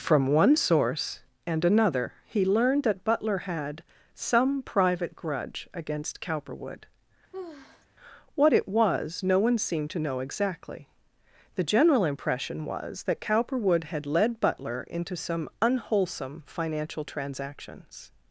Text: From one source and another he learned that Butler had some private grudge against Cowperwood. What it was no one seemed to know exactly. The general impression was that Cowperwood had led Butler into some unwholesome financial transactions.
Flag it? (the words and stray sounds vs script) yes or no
yes